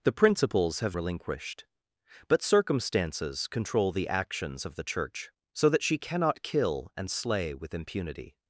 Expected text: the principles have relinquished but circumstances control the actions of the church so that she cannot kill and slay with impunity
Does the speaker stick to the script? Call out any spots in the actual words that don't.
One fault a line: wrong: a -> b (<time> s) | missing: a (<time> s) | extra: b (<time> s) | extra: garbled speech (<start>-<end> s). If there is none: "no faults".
no faults